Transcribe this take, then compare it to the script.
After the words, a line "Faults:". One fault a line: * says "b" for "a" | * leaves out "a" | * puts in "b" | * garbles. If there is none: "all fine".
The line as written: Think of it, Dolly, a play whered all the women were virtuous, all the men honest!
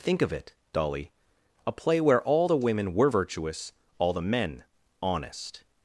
Think of it, Dolly, a play where all the women were virtuous, all the men honest!
Faults:
* says "where" for "whered"